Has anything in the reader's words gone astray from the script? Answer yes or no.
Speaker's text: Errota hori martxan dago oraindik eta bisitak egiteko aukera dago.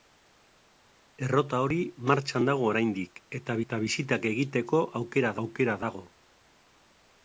yes